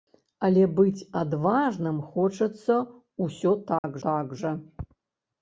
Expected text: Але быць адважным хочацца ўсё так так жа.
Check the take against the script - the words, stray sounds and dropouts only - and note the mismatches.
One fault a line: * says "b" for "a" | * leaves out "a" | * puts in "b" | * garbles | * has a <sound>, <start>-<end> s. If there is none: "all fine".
* has a dropout, 3.8-3.8 s